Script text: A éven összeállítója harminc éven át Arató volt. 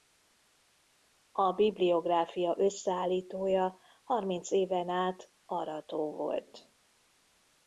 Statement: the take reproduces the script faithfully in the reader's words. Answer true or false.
false